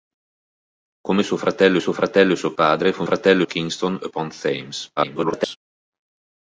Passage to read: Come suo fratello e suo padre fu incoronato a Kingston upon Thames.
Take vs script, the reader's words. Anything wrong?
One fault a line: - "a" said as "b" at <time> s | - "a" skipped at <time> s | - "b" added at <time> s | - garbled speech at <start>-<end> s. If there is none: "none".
- "suo fratello" added at 1.8 s
- "incoronato" said as "fratello" at 3.0 s
- garbled speech at 5.0-5.6 s